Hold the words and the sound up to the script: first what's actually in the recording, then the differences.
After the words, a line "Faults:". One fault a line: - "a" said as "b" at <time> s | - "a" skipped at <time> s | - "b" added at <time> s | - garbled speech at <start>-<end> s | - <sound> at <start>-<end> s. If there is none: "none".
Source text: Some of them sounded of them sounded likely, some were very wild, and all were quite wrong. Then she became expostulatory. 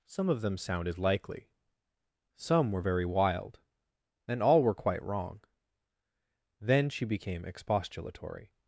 Some of them sounded likely, some were very wild, and all were quite wrong. Then she became expostulatory.
Faults:
- "of them sounded" skipped at 1.0 s